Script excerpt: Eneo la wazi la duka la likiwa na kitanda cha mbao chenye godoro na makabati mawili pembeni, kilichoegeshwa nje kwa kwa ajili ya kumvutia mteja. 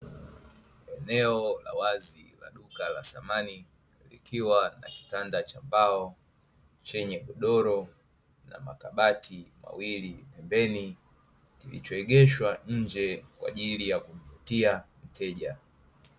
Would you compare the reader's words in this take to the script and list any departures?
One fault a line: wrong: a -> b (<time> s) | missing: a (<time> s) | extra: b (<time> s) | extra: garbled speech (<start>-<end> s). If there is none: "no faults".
extra: samani (3.0 s)
missing: kwa (13.5 s)